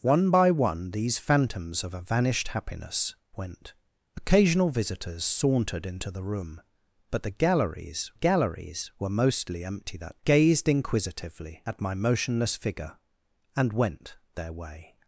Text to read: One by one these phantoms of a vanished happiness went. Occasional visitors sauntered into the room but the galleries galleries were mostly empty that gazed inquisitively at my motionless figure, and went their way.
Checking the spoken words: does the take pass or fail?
pass